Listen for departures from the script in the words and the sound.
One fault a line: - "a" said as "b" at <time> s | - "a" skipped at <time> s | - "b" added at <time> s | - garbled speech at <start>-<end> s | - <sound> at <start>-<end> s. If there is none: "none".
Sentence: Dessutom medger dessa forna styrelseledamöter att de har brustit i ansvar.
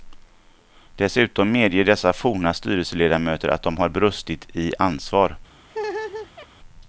- laugh at 5.7-6.5 s